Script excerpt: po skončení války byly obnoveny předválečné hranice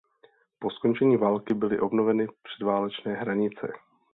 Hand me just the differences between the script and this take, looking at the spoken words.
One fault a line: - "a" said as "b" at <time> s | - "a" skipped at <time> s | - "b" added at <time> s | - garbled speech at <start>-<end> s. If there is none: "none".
none